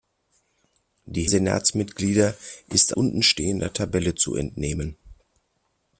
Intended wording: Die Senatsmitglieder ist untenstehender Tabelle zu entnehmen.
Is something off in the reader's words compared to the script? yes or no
no